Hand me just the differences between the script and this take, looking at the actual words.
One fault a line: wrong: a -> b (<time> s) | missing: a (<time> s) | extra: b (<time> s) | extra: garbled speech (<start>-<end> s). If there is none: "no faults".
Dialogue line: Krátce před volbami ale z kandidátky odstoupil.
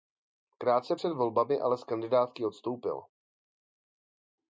no faults